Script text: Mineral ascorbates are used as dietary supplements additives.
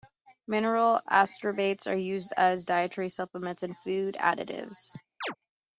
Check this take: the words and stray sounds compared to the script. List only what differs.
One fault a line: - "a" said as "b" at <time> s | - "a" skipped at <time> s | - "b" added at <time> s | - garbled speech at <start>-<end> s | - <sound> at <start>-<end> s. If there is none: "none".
- "and food" added at 3.6 s
- chirp at 5.2-5.4 s